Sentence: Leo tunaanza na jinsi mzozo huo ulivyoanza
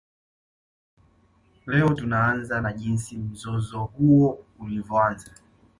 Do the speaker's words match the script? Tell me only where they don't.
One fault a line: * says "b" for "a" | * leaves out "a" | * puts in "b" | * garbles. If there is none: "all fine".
all fine